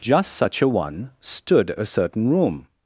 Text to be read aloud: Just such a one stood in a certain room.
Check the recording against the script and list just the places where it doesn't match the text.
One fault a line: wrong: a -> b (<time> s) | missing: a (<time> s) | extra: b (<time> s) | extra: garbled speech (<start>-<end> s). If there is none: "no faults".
missing: in (1.8 s)